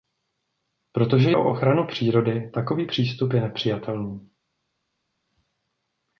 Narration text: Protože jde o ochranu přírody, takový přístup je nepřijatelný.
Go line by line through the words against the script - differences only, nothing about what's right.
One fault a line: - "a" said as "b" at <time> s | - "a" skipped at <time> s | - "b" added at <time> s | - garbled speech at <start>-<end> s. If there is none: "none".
- "jde" skipped at 1.3 s